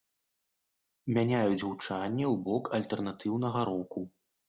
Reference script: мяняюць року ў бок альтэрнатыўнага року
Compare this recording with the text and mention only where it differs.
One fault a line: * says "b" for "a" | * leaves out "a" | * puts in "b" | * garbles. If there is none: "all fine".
* says "гучанне" for "року"